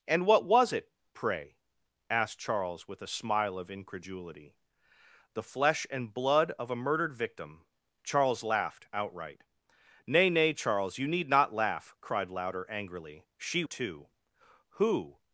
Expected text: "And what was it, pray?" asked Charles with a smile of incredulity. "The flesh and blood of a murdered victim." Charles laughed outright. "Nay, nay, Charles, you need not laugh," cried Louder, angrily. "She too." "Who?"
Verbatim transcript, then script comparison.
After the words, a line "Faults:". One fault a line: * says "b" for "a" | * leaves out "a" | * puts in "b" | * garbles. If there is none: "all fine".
"And what was it, pray?" asked Charles with a smile of incredulity. "The flesh and blood of a murdered victim." Charles laughed outright. "Nay, nay, Charles, you need not laugh," cried Louder, angrily. "She too." "Who?"
Faults:
all fine